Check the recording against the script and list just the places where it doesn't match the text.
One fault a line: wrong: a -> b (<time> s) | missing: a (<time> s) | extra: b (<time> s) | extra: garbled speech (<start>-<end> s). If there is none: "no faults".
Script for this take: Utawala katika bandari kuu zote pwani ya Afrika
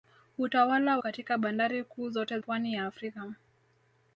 no faults